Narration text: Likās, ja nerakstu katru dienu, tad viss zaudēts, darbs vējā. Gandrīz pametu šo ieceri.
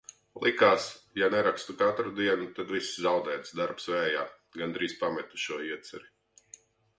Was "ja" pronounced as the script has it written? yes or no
yes